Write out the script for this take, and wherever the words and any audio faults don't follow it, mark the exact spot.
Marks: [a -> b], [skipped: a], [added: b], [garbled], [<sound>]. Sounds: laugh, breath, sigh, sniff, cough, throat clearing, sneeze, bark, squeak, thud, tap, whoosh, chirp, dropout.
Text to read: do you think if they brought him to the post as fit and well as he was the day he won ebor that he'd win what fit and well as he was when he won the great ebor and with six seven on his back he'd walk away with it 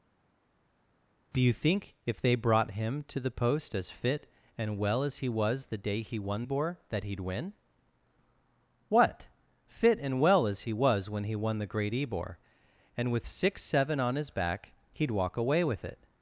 do you think if they brought him to the post as fit and well as he was the day he won ebor that he'd win what fit and well as he was when he won the great ebor and with six seven on his back he'd walk away with it